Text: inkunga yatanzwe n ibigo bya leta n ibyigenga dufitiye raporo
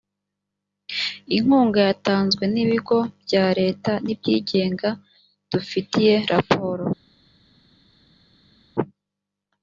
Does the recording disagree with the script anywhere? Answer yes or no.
no